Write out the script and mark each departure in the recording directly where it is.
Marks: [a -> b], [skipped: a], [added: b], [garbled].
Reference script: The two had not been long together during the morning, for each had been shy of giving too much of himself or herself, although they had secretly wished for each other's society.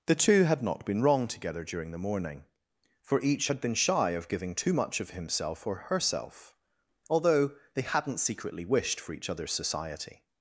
The two had not been [long -> wrong] together during the morning, for each had been shy of giving too much of himself or herself, although they [had -> hadn't] secretly wished for each other's society.